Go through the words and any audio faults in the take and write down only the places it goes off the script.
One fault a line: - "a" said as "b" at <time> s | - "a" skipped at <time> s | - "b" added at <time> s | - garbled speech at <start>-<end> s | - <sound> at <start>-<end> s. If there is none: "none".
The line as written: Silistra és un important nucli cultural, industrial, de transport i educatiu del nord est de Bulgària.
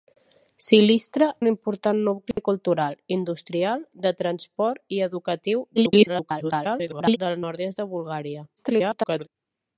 - "és" skipped at 1.3 s
- dropout at 2.3-2.4 s
- garbled speech at 5.8-7.2 s
- garbled speech at 8.6-9.3 s